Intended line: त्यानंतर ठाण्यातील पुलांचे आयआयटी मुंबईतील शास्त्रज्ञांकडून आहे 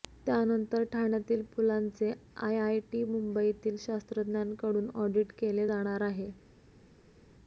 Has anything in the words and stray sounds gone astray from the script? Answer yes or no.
yes